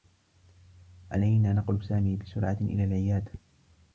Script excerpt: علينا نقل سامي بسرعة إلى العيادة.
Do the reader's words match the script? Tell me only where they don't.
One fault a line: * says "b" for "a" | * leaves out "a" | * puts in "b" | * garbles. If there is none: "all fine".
all fine